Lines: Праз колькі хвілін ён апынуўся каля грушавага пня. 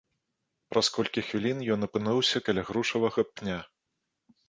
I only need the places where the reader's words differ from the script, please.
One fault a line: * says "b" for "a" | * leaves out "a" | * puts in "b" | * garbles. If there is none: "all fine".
all fine